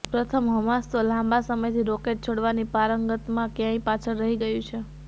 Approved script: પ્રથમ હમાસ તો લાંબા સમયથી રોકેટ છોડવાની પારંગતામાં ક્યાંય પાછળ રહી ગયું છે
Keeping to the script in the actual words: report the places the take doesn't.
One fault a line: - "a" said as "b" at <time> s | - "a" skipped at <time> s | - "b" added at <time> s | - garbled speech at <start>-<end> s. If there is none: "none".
none